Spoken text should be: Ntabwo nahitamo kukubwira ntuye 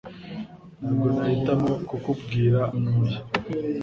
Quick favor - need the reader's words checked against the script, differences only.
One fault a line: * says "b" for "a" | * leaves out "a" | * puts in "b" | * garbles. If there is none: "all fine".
all fine